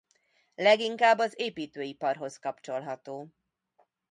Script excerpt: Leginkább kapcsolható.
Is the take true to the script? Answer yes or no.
no